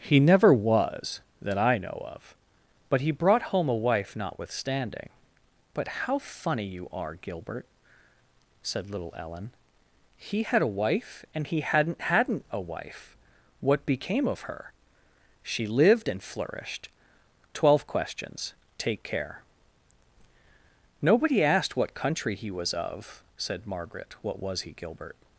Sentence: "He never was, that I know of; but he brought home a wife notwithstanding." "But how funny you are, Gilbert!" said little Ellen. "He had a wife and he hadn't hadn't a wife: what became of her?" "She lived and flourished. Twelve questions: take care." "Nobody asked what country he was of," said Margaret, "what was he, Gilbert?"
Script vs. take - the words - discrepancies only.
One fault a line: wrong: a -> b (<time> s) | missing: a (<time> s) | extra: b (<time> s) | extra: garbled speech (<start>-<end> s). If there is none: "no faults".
no faults